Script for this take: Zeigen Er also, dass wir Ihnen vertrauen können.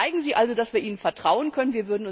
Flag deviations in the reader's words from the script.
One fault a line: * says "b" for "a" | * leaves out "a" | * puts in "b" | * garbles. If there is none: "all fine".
* says "Sie" for "Er"